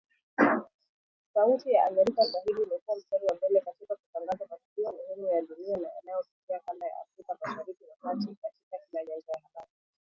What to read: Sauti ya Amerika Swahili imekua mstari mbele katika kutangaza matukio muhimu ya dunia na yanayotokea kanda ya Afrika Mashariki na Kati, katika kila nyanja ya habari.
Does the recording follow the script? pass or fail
fail